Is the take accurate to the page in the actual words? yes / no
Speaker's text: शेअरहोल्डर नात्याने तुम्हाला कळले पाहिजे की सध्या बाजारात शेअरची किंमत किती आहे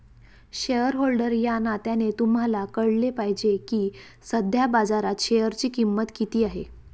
no